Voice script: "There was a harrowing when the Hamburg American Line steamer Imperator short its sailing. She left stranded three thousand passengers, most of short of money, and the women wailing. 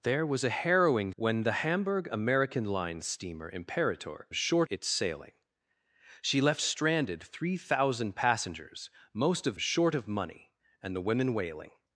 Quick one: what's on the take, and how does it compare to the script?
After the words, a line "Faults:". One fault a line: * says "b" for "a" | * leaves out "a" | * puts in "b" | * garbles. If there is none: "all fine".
"There was a harrowing when the Hamburg American Line steamer Imperator short its sailing. She left stranded three thousand passengers, most of short of money, and the women wailing.
Faults:
all fine